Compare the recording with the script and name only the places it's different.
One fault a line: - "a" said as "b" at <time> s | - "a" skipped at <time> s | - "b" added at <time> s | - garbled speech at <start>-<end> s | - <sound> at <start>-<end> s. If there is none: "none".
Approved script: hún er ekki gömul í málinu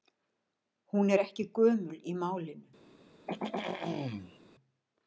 - throat clearing at 3.3-4.4 s